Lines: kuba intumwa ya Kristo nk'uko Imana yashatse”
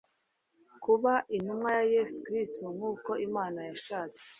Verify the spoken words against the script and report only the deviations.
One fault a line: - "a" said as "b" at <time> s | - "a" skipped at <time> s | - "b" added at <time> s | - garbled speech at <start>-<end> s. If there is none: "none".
- "Yesu" added at 1.9 s